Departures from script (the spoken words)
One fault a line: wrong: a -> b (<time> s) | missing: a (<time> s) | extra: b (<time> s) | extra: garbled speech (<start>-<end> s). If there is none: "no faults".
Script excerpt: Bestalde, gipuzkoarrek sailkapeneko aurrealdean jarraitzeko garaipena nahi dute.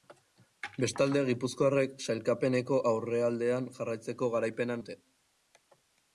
missing: nahi (4.8 s)